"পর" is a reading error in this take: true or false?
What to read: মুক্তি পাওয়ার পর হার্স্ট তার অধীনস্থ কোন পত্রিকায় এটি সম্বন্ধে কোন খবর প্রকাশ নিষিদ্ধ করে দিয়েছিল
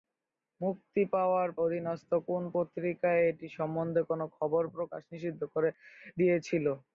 true